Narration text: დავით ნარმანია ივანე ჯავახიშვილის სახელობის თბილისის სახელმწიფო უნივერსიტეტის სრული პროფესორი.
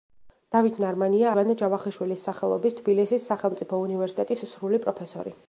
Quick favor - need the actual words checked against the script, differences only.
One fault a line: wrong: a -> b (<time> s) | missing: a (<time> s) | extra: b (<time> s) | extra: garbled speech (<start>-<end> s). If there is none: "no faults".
no faults